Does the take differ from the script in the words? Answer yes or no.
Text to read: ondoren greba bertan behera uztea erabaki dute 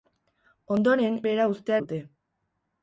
yes